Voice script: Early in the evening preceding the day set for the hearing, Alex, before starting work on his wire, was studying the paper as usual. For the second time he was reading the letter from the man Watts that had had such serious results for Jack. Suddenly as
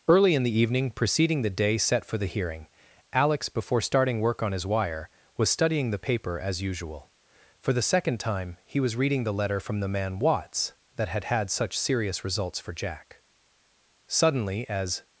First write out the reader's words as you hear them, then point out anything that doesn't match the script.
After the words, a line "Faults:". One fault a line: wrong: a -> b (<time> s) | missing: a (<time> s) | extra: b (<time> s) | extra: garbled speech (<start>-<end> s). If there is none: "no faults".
Early in the evening preceding the day set for the hearing, Alex, before starting work on his wire, was studying the paper as usual. For the second time he was reading the letter from the man Watts that had had such serious results for Jack. Suddenly as
Faults:
no faults